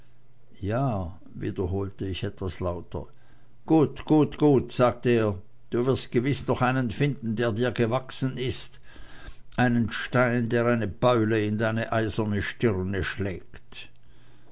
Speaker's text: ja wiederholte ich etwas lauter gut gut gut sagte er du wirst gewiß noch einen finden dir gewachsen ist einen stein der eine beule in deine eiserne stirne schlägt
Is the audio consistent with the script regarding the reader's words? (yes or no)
no